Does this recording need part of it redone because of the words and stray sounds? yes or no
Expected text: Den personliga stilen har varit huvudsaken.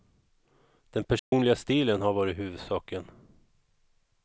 yes